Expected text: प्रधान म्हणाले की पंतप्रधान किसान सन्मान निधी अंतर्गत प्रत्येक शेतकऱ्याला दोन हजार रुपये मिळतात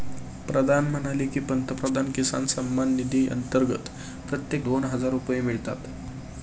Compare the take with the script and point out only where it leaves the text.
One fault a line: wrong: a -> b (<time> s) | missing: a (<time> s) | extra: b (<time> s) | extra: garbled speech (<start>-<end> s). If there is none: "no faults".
missing: शेतकऱ्याला (4.7 s)